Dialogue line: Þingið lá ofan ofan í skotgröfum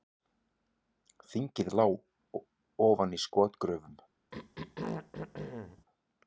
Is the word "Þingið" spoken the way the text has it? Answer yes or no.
yes